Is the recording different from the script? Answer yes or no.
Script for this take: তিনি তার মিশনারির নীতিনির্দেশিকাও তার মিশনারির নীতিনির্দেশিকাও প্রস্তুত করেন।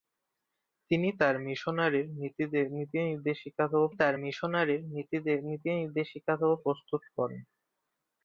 no